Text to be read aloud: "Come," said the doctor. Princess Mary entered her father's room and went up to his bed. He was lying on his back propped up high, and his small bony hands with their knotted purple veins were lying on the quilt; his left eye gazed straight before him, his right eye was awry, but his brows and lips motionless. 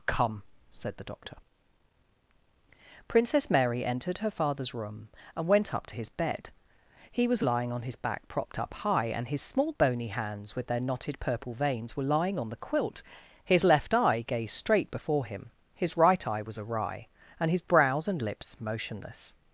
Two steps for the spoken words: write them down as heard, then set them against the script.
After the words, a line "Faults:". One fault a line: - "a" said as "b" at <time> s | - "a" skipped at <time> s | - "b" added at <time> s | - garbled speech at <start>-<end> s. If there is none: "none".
"Come," said the doctor. Princess Mary entered her father's room and went up to his bed. He was lying on his back propped up high, and his small bony hands with their knotted purple veins were lying on the quilt; his left eye gazed straight before him, his right eye was awry, and his brows and lips motionless.
Faults:
- "but" said as "and" at 17.4 s